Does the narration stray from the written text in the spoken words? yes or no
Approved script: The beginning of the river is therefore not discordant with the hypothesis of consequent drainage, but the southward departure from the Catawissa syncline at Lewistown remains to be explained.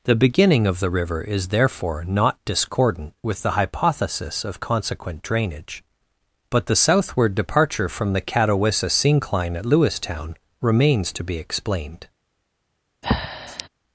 no